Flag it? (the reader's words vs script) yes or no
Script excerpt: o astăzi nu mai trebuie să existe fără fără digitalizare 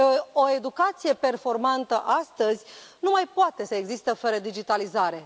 yes